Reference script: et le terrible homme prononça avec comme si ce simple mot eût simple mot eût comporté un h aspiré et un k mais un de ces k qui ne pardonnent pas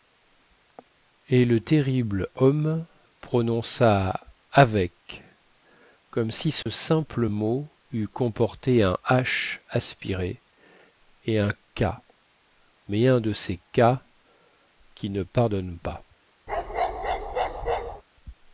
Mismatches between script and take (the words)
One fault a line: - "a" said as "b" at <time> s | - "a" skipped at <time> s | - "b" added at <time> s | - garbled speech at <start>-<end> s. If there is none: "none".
- "simple mot eût" skipped at 8.1 s